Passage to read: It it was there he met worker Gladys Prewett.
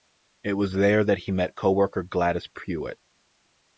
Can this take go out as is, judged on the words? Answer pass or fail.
fail